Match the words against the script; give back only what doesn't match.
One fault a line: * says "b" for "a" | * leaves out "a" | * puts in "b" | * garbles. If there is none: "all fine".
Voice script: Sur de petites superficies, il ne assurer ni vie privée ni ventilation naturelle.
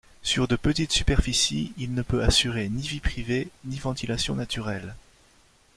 * puts in "peut"